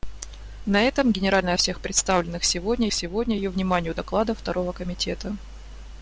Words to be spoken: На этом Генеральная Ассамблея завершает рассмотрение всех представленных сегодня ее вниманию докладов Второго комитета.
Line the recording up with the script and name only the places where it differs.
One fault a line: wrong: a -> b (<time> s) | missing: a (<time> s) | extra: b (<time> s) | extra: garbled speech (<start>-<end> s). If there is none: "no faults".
missing: Ассамблея завершает рассмотрение (1.5 s)
extra: сегодня (2.9 s)